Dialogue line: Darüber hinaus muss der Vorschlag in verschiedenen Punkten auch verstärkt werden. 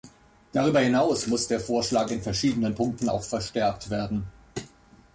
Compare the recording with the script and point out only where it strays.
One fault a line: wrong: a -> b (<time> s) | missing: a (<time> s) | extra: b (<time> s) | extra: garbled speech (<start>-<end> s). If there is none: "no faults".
no faults